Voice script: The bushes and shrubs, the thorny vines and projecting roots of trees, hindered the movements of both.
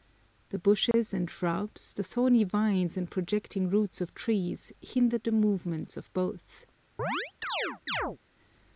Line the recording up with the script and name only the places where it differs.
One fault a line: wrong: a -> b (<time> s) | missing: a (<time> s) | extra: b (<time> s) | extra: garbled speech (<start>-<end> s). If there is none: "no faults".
no faults